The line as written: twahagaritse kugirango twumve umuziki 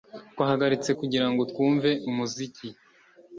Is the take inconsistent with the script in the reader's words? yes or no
no